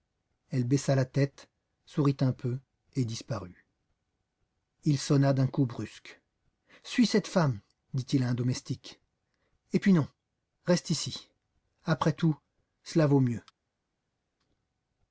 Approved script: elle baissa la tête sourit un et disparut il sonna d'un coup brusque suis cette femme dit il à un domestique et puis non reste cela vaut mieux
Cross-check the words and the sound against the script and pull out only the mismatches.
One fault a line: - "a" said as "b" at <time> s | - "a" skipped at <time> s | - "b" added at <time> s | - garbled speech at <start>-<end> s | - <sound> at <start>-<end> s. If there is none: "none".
- "peu" added at 2.3 s
- "ici après tout" added at 10.9 s